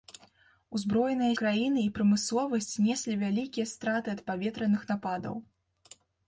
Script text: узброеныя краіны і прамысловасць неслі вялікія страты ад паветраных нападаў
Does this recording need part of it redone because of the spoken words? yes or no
no